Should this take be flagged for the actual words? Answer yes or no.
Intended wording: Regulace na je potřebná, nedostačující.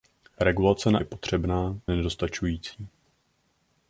no